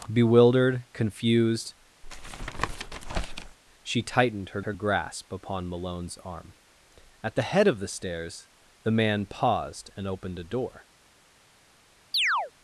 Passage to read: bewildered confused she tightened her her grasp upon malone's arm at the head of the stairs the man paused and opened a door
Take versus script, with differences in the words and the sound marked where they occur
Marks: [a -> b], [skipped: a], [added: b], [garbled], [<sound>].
bewildered confused [tap] she tightened her her grasp upon malone's arm at the head of the stairs the man paused and opened a door [chirp]